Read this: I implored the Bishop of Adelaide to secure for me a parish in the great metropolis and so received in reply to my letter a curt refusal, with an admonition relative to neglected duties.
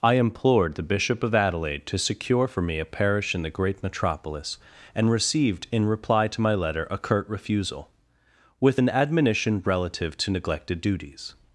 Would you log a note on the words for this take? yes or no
yes